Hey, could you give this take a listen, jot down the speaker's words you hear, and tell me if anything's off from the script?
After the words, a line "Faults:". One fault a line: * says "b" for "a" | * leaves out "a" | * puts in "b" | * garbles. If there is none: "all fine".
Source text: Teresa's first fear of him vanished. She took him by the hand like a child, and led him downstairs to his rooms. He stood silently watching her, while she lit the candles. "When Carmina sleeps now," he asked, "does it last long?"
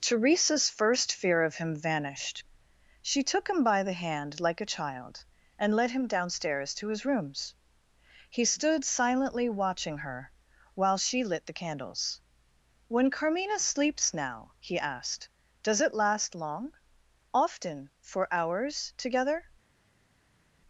Teresa's first fear of him vanished. She took him by the hand like a child, and led him downstairs to his rooms. He stood silently watching her, while she lit the candles. "When Carmina sleeps now," he asked, "does it last long?" "Often for hours together
Faults:
* puts in "Often for hours together"